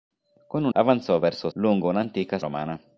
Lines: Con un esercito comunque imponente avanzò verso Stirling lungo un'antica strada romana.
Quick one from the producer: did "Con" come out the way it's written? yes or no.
yes